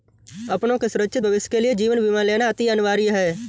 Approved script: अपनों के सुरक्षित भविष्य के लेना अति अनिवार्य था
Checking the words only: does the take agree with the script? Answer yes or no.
no